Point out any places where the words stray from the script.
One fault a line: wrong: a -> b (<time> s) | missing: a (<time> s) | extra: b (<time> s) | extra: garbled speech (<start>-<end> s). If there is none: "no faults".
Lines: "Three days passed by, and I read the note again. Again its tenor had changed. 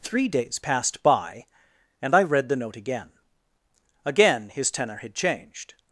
wrong: its -> his (4.5 s)